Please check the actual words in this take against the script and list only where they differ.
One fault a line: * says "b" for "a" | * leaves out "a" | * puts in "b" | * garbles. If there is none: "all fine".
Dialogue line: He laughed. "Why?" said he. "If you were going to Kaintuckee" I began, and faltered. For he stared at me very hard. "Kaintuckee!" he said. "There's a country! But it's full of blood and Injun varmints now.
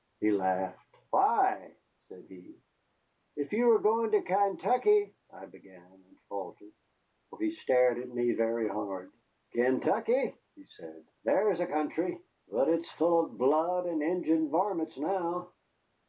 all fine